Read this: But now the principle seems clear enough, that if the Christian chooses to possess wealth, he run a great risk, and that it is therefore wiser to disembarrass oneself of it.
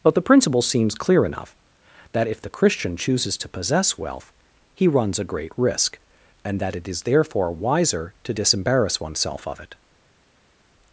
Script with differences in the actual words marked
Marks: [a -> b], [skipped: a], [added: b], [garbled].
But [skipped: now] the principle seems clear enough, that if the Christian chooses to possess wealth, he [run -> runs] a great risk, and that it is therefore wiser to disembarrass oneself of it.